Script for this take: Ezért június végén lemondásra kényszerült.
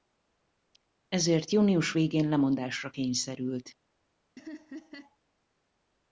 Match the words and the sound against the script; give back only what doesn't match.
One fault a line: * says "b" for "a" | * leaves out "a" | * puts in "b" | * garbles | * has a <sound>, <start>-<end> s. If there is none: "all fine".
* has a laugh, 4.4-5.2 s